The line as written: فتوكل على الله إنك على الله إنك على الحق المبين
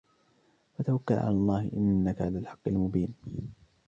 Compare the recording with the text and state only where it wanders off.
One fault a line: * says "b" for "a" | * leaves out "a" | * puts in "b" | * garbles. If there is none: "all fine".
* leaves out "الله إنك على"